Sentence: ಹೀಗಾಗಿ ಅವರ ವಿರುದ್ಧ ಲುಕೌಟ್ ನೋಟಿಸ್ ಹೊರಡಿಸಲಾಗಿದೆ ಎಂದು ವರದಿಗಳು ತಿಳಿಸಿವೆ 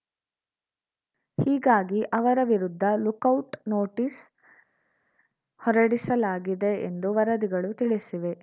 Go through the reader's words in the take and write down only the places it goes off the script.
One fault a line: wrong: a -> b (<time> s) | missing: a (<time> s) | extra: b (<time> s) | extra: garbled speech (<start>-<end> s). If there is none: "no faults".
no faults